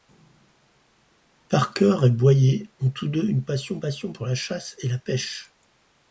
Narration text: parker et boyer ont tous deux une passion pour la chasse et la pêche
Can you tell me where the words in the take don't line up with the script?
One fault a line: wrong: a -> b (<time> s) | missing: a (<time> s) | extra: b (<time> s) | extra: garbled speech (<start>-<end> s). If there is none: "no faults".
extra: passion (3.8 s)